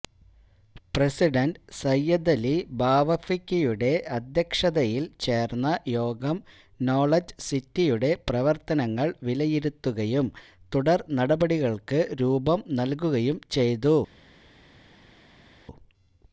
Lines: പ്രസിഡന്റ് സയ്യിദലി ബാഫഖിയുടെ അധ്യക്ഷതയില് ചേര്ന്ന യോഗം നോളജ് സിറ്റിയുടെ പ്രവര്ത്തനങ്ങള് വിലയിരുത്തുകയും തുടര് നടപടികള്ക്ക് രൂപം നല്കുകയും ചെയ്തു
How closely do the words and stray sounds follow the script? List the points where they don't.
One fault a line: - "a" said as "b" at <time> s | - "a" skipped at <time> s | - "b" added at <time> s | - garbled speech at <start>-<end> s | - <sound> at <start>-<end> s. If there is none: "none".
none